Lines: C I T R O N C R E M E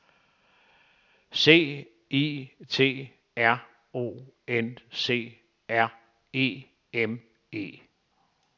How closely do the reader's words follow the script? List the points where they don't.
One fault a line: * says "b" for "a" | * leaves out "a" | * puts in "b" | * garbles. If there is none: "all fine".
all fine